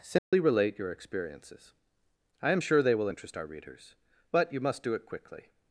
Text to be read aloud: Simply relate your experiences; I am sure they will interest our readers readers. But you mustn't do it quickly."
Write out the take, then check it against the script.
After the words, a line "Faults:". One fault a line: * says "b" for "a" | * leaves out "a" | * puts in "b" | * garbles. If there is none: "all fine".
Simply relate your experiences; I am sure they will interest our readers. But you must do it quickly."
Faults:
* leaves out "readers"
* says "must" for "mustn't"